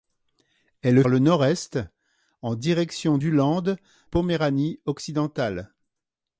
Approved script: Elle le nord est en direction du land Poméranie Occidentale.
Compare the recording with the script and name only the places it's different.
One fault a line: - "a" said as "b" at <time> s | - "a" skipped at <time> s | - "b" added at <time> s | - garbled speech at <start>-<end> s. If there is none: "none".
none